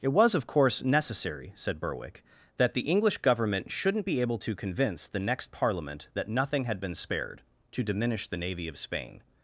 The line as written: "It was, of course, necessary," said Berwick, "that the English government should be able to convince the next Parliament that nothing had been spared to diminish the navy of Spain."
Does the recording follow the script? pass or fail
fail